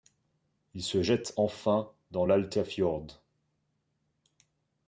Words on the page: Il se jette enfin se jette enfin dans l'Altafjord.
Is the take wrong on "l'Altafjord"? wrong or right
right